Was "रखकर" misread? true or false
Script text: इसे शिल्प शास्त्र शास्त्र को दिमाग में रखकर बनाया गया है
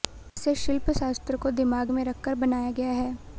false